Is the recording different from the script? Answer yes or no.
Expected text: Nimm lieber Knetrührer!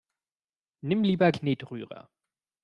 no